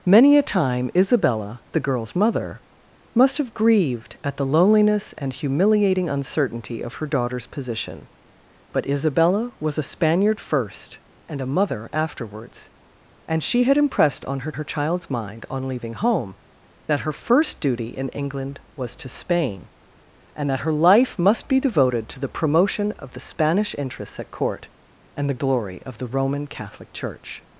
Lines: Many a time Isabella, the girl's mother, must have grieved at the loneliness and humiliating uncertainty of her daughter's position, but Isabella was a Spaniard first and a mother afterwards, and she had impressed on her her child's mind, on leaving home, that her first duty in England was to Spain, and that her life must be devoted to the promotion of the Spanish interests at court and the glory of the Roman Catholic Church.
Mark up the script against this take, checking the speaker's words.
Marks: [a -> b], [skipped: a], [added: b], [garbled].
Many a time Isabella, the girl's mother, must have grieved at the loneliness and humiliating uncertainty of her daughter's position, but Isabella was a Spaniard first and a mother afterwards, and she had impressed on her her child's mind, on leaving home, that her first duty in England was to Spain, and that her life must be devoted to the promotion of the Spanish interests at court and the glory of the Roman Catholic Church.